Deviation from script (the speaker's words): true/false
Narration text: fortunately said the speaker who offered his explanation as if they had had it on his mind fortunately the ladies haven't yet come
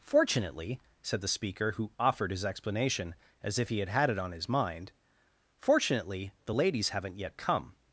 true